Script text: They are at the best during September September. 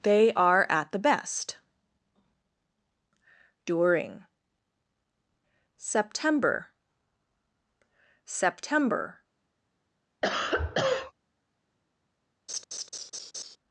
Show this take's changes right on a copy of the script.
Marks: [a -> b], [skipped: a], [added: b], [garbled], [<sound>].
They are at the best during September September. [cough] [laugh]